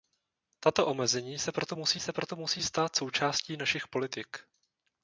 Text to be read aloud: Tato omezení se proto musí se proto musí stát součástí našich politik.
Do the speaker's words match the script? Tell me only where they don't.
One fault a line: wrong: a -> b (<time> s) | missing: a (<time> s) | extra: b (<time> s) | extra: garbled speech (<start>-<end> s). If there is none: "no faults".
no faults